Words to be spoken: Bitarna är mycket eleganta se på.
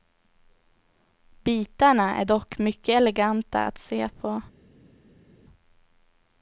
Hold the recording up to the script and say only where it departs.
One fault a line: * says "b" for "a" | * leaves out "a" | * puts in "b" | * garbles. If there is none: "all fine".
* puts in "dock"
* puts in "att"